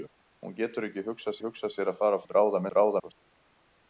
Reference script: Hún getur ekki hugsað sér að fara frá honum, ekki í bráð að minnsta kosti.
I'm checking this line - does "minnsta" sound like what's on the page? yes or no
no